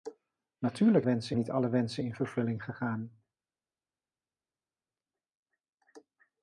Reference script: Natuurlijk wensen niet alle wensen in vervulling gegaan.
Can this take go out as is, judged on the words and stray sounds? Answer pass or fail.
pass